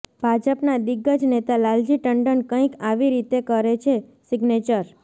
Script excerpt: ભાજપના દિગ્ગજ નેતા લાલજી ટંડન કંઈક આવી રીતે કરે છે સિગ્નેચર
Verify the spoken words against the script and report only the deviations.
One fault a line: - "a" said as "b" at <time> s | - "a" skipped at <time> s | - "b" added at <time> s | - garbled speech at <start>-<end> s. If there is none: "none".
none